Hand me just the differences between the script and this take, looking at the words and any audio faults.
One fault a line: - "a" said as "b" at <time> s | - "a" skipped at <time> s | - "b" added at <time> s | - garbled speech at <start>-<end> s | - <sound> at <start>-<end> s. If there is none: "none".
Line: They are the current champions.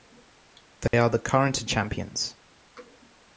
- dropout at 0.9-0.9 s